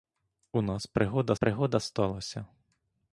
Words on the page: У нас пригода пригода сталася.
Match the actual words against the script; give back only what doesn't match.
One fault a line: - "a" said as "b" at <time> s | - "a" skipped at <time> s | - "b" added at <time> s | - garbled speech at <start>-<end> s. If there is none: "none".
none